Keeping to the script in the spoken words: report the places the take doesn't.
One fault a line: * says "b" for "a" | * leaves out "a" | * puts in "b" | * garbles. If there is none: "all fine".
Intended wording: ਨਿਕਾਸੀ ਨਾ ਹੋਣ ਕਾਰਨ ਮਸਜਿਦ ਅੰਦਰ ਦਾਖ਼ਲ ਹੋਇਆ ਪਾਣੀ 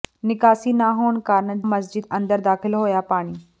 all fine